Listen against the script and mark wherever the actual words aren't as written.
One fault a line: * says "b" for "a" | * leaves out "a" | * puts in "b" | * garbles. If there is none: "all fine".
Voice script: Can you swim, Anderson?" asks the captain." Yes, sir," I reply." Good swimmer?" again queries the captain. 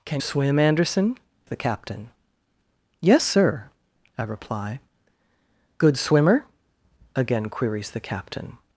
* leaves out "you"
* leaves out "asks"